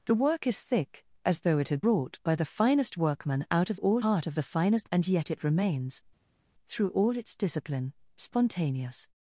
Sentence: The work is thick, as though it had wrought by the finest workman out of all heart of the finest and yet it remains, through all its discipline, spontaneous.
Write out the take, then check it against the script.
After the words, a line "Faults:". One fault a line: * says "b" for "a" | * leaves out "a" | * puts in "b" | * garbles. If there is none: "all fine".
The work is thick, as though it had wrought by the finest workman out of all heart of the finest and yet it remains, through all its discipline, spontaneous.
Faults:
all fine